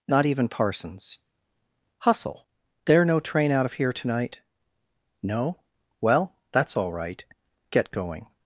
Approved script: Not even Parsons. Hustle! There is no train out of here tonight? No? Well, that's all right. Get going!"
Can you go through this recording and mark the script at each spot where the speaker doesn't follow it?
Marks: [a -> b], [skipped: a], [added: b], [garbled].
Not even Parsons. Hustle! There [skipped: is] no train out of here tonight? No? Well, that's all right. Get going!"